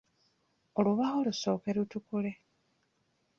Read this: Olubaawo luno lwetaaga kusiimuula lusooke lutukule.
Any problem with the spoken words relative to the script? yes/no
yes